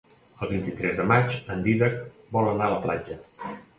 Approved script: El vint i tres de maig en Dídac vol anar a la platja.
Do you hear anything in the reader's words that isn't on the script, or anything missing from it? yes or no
no